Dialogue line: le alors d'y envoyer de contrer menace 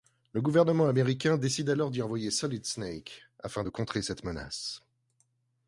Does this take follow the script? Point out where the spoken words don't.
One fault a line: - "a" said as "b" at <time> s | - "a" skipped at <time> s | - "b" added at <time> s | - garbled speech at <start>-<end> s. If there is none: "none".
- "gouvernement américain décide" added at 0.4 s
- "solid snake afin" added at 2.3 s
- "cette" added at 4.0 s